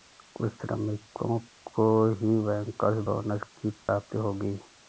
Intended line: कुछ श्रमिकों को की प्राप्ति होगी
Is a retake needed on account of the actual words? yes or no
yes